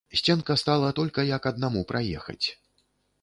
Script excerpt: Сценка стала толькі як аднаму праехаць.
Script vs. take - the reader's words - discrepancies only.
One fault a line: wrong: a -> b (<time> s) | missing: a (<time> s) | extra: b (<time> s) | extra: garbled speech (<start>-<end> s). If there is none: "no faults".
no faults